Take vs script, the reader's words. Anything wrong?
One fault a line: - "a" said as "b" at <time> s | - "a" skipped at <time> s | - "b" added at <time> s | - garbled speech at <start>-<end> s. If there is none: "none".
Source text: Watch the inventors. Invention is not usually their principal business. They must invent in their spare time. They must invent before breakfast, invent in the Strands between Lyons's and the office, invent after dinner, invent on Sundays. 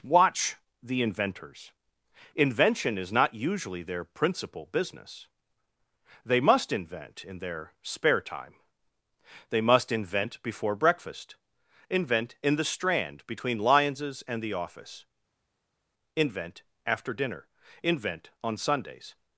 - "Strands" said as "Strand" at 12.7 s